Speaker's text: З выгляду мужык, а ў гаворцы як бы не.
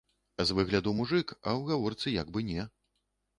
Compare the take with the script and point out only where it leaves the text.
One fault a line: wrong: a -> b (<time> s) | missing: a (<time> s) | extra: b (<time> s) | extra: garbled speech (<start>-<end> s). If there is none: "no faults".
no faults